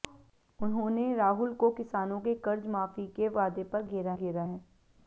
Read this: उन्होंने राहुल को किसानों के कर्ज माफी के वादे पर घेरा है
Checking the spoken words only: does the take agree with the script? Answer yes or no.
no